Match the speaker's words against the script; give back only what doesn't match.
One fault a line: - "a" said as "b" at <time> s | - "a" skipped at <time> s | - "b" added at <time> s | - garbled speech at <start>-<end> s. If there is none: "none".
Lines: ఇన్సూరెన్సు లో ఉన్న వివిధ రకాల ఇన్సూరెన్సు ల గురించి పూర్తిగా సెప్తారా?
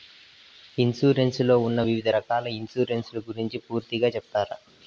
none